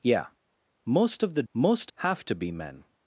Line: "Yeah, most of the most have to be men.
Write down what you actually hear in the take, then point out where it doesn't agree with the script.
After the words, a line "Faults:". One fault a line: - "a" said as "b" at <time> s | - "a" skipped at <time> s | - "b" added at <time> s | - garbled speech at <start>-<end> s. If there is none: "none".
"Yeah, most of the most have to be men.
Faults:
none